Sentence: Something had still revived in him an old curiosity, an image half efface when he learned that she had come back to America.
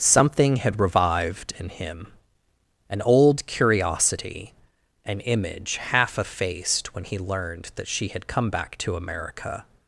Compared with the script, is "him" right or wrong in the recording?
right